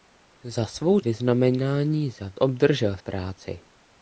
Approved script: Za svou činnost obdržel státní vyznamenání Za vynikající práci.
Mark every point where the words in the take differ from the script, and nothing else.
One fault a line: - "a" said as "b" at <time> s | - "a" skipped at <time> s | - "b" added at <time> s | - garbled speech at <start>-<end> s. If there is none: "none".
- "činnost obdržel státní" skipped at 1.0 s
- "vynikající" said as "obdržel" at 2.4 s